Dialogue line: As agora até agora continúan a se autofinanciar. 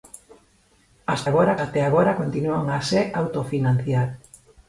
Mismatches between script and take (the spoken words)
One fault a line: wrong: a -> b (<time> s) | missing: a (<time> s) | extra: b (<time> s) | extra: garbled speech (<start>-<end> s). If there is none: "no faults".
no faults